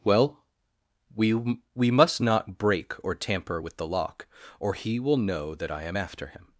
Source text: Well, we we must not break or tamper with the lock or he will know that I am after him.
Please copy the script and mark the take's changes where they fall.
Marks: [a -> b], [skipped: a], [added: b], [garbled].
Well, we we must not break or tamper with the lock or he will know that I am after him.